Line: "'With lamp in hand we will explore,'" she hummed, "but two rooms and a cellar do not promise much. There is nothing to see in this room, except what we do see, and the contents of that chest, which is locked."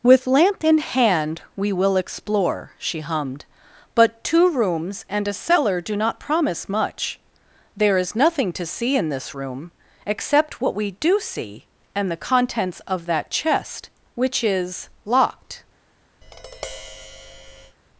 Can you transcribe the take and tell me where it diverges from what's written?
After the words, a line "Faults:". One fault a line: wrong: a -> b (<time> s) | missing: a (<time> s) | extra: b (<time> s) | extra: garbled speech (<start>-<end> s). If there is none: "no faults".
"'With lamp in hand we will explore,'" she hummed, "but two rooms and a cellar do not promise much. There is nothing to see in this room, except what we do see, and the contents of that chest, which is locked."
Faults:
no faults